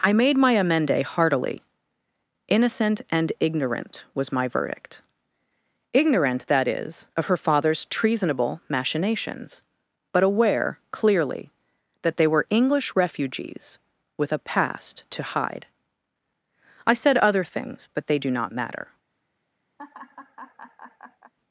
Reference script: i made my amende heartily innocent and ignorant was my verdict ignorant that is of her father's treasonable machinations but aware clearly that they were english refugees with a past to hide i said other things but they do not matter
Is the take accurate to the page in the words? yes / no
yes